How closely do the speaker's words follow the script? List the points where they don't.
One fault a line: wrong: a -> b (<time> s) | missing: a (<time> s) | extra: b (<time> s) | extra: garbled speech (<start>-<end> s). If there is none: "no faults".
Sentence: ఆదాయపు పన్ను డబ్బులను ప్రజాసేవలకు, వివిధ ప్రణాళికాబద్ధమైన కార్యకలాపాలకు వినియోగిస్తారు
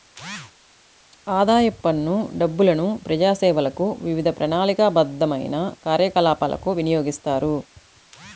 no faults